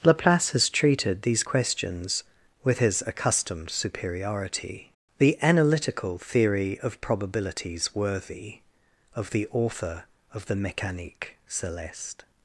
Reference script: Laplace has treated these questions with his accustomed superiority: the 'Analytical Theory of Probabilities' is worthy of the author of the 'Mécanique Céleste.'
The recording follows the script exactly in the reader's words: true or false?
false